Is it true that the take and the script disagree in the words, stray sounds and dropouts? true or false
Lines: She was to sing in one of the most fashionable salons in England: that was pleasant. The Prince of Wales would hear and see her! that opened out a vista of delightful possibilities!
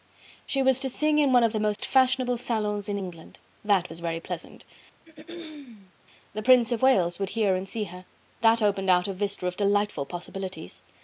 true